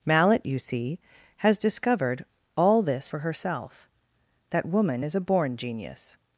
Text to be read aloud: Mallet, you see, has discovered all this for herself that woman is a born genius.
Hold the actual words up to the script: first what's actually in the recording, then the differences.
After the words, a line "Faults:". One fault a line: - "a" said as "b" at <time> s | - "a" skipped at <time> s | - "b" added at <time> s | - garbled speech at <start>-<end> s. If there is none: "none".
Mallet, you see, has discovered all this for herself that woman is a born genius.
Faults:
none